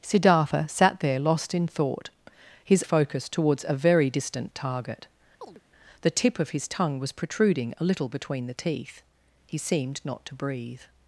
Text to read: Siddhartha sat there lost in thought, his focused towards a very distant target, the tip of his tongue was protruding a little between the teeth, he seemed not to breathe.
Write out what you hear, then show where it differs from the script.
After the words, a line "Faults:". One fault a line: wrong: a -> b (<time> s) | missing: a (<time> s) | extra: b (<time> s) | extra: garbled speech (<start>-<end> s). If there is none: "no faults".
Siddhartha sat there lost in thought, his focused towards a very distant target, the tip of his tongue was protruding a little between the teeth, he seemed not to breathe.
Faults:
no faults